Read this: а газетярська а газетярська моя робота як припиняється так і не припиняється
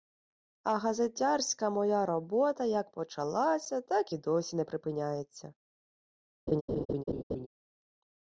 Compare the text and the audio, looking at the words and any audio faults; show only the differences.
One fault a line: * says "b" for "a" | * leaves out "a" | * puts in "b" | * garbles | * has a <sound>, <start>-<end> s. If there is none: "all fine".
* leaves out "а газетярська"
* says "почалася" for "припиняється"
* puts in "досі"
* has a laugh, 6.5-7.5 s